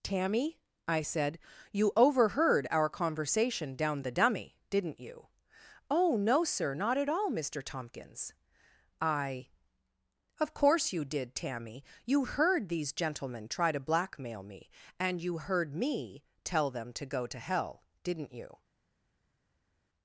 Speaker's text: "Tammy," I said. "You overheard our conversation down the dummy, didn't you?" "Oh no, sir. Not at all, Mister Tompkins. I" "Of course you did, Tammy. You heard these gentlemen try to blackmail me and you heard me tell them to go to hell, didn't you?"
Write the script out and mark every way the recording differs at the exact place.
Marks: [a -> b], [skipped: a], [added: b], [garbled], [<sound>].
"Tammy," I said. "You overheard our conversation down the dummy, didn't you?" "Oh no, sir. Not at all, Mister Tompkins. I" "Of course you did, Tammy. You heard these gentlemen try to blackmail me and you heard me tell them to go to hell, didn't you?"